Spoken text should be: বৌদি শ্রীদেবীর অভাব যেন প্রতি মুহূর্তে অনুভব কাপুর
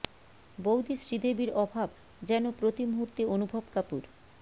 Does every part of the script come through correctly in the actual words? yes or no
yes